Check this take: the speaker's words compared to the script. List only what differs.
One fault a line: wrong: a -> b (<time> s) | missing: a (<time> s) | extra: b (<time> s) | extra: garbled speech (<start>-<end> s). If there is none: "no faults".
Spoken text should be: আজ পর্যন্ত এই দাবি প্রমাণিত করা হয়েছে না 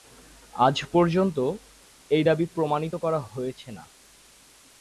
no faults